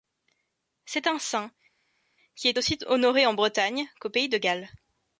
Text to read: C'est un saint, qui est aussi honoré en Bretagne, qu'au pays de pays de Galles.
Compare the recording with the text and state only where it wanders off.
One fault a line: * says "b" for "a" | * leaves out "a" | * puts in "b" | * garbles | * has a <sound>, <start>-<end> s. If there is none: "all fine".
* leaves out "pays de"